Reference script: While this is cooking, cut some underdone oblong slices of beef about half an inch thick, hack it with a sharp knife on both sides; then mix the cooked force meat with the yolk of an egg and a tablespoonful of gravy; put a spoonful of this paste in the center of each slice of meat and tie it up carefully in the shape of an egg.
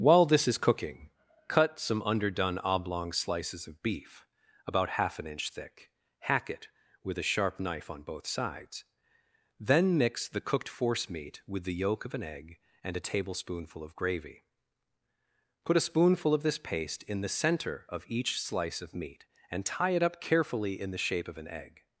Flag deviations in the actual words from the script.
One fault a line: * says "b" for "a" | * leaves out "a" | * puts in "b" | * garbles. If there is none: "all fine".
all fine